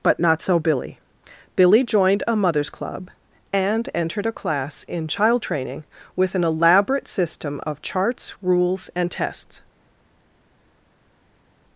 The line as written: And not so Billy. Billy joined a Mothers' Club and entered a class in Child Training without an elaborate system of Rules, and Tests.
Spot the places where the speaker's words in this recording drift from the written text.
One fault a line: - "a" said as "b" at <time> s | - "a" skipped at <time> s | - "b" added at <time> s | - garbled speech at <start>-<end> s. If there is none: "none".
- "And" said as "But" at 0.0 s
- "without" said as "with" at 6.2 s
- "Charts" added at 7.8 s